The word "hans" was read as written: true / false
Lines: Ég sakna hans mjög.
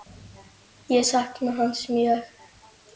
true